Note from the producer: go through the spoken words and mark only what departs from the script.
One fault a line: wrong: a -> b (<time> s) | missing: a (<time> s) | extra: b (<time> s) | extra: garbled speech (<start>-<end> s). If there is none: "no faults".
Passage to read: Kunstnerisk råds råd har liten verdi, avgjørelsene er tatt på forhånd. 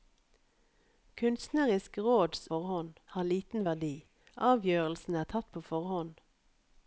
wrong: råd -> forhånd (2.5 s)